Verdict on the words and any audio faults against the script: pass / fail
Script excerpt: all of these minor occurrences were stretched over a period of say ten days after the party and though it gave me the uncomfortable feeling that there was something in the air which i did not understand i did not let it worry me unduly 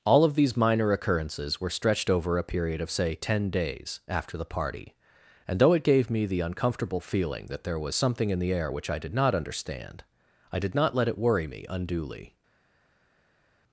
pass